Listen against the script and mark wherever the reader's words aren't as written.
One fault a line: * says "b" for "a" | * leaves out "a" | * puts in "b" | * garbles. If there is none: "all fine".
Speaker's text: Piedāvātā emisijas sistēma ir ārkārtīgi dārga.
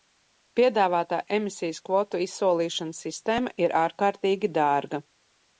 * puts in "kvotu izsolīšanas"